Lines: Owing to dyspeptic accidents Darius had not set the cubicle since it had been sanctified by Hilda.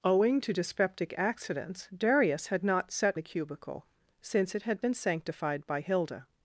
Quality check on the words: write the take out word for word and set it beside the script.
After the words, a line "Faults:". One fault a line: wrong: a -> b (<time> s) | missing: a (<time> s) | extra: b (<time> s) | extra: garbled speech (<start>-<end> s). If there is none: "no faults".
Owing to dyspeptic accidents Darius had not set the cubicle since it had been sanctified by Hilda.
Faults:
no faults